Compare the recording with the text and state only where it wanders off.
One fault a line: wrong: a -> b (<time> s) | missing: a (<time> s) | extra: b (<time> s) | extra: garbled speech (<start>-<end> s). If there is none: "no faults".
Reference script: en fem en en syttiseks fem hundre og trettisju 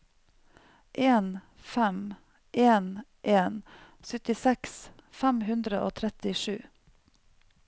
no faults